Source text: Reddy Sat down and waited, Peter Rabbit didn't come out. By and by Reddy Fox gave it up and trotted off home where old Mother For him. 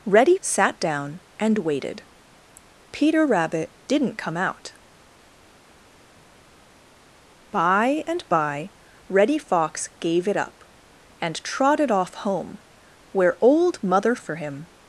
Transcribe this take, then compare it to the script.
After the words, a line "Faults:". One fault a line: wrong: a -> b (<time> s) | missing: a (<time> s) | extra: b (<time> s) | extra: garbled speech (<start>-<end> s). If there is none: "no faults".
Reddy Sat down and waited, Peter Rabbit didn't come out. By and by Reddy Fox gave it up and trotted off home where old Mother For him.
Faults:
no faults